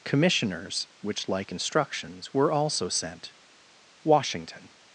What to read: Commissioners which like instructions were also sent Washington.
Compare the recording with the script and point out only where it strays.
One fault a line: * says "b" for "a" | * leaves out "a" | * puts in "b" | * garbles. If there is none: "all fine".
all fine